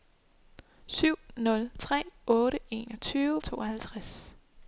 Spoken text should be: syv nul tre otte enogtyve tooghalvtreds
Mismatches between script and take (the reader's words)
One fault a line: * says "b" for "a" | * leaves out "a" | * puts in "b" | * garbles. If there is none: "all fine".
all fine